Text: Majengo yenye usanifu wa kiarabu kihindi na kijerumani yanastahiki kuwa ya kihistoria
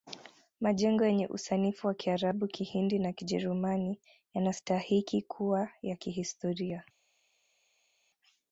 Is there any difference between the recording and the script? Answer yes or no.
no